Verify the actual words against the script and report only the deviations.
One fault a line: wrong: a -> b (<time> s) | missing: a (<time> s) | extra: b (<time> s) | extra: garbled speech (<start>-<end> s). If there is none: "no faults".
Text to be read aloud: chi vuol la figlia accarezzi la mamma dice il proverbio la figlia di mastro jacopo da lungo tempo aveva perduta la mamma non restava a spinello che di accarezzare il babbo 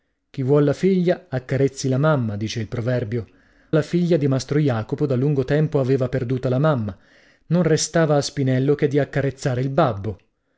no faults